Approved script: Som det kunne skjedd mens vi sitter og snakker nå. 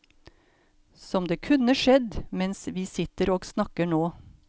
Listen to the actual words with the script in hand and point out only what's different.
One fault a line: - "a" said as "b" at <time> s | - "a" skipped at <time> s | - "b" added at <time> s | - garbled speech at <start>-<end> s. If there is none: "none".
none